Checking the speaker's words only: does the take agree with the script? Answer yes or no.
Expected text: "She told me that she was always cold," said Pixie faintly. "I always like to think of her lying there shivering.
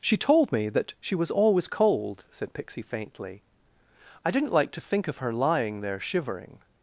no